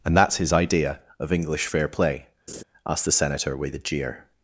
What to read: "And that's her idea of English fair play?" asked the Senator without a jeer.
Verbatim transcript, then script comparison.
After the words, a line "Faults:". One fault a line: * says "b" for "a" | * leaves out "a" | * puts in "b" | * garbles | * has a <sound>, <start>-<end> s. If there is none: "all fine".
"And that's his idea of English fair play?" asked the Senator with a jeer.
Faults:
* says "his" for "her"
* has a laugh, 2.5-2.6 s
* says "with" for "without"